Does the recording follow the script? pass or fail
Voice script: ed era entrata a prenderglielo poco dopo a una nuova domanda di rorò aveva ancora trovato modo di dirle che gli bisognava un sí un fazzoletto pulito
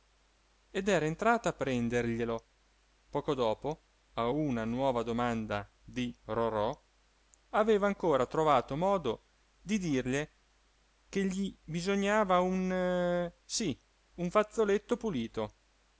pass